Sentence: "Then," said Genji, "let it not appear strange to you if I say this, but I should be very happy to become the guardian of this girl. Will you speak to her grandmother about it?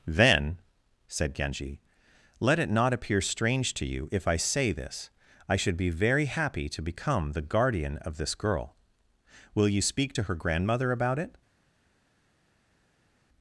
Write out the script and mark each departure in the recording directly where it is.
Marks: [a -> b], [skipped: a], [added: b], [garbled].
"Then," said Genji, "let it not appear strange to you if I say this, [skipped: but] I should be very happy to become the guardian of this girl. Will you speak to her grandmother about it?